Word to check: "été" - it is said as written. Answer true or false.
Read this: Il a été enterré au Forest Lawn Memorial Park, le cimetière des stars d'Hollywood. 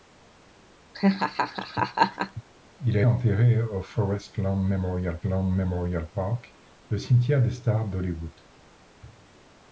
false